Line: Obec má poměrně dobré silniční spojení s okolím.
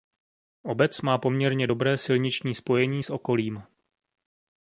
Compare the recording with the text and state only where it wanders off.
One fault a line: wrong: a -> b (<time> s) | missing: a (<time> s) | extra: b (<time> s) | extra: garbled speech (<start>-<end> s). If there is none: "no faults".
no faults